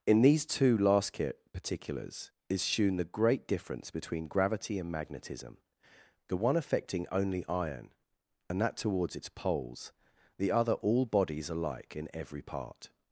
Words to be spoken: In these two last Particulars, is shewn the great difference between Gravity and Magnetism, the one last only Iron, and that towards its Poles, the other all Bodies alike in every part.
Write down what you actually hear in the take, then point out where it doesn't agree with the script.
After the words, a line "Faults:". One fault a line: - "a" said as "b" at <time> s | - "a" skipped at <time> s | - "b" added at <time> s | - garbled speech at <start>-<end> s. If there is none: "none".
In these two last Particulars, is shewn the great difference between Gravity and Magnetism, the one affecting only Iron, and that towards its Poles, the other all Bodies alike in every part.
Faults:
- "last" said as "affecting" at 6.6 s